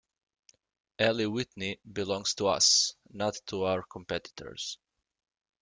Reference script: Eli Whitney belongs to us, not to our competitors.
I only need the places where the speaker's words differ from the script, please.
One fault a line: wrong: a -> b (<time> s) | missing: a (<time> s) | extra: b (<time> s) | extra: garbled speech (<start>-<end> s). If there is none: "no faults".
no faults